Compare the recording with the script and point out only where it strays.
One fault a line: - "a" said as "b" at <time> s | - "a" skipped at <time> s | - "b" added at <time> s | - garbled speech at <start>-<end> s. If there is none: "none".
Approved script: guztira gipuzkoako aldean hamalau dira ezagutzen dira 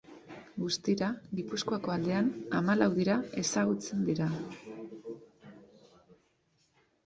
none